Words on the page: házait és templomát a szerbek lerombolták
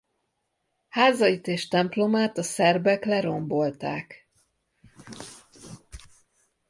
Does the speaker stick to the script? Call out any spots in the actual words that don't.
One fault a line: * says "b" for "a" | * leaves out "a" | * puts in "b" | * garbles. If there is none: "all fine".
all fine